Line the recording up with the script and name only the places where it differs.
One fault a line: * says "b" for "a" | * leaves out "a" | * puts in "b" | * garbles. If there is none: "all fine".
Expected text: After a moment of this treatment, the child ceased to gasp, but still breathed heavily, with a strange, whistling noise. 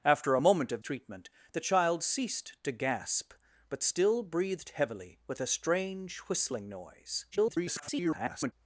* leaves out "this"
* garbles